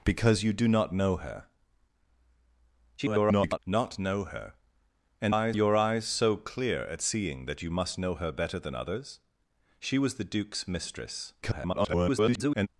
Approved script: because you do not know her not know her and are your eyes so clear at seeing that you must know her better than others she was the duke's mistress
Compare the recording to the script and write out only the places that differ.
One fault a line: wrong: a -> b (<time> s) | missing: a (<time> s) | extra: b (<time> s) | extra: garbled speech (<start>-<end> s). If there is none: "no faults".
extra: garbled speech (3.0-3.6 s)
wrong: are -> eyes (5.3 s)
extra: garbled speech (11.4-12.7 s)